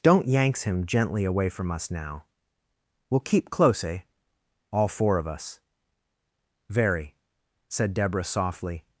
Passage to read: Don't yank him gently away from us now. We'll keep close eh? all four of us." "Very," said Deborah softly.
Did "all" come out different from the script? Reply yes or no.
no